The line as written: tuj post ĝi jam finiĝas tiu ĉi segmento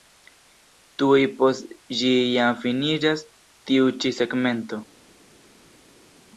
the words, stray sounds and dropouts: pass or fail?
pass